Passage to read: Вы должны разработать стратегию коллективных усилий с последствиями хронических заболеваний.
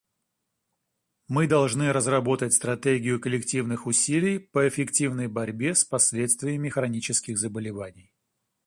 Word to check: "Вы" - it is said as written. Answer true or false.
false